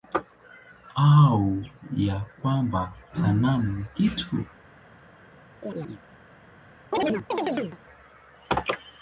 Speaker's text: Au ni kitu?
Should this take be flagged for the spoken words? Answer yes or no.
yes